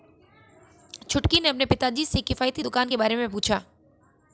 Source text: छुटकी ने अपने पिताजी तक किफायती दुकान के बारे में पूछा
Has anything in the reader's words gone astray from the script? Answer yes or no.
yes